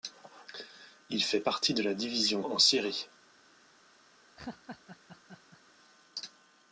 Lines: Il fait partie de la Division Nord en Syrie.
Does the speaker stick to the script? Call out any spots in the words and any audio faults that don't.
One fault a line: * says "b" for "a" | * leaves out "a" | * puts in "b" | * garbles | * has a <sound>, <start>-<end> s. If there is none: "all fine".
* leaves out "Nord"
* has a laugh, 4.4-5.6 s